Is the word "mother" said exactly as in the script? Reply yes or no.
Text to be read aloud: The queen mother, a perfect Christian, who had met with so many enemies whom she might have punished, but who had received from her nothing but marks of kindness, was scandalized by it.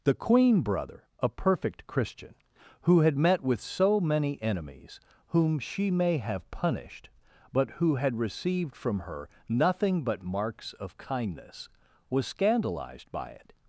no